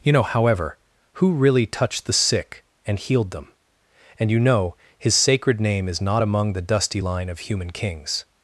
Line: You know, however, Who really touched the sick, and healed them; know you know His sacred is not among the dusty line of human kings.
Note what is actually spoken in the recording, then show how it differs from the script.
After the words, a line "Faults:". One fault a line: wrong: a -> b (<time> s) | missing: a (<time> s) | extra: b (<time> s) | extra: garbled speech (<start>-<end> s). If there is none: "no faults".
You know, however, Who really touched the sick, and healed them; and you know His sacred name is not among the dusty line of human kings.
Faults:
wrong: know -> and (4.2 s)
extra: name (5.6 s)